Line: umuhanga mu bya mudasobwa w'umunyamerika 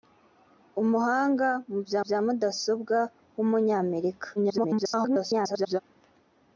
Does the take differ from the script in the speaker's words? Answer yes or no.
yes